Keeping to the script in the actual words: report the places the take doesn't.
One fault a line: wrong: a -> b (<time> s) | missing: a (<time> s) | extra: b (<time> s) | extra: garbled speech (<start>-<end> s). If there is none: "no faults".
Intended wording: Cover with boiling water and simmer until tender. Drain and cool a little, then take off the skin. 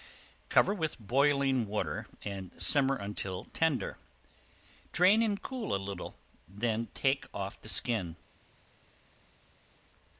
no faults